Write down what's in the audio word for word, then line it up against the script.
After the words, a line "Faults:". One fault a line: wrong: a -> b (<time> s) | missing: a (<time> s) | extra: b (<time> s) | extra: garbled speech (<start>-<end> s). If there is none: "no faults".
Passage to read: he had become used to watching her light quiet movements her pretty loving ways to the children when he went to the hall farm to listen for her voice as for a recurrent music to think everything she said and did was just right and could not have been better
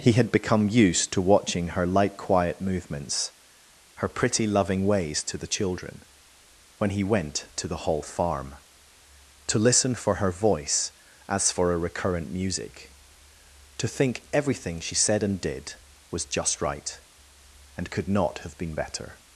he had become used to watching her light quiet movements her pretty loving ways to the children when he went to the hall farm to listen for her voice as for a recurrent music to think everything she said and did was just right and could not have been better
Faults:
no faults